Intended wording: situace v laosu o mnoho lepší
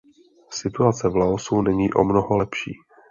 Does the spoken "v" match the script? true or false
true